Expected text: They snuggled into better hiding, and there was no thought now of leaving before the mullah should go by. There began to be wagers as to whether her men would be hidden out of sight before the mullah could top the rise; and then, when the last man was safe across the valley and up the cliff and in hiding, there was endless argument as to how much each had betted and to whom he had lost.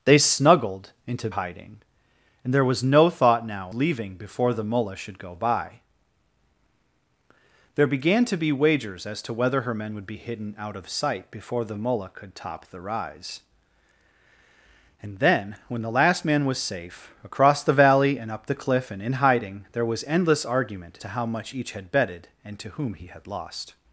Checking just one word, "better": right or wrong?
wrong